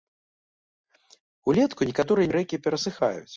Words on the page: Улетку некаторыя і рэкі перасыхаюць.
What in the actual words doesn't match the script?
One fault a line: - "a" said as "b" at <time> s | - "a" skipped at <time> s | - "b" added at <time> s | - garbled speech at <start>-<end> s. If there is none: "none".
none